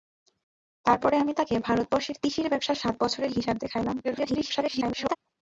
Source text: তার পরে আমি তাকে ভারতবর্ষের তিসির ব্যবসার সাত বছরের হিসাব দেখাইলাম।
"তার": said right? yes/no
yes